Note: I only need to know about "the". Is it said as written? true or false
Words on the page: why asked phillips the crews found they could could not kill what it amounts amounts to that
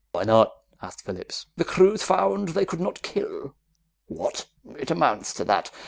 true